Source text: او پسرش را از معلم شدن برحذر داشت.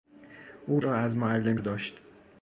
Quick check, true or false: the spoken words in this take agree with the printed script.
false